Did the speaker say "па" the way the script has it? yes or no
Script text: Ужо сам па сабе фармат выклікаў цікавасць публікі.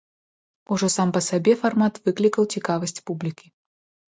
yes